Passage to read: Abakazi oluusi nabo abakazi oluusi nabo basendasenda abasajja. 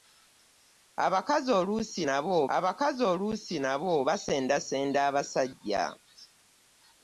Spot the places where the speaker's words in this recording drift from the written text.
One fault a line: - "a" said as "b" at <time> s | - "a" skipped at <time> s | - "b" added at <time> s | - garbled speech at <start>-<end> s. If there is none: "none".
none